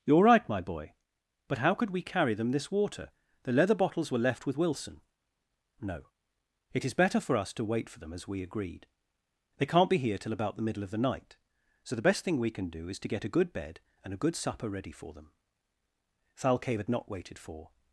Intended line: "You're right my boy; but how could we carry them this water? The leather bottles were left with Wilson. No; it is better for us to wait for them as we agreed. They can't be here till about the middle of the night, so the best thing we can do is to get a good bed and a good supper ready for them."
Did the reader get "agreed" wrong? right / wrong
right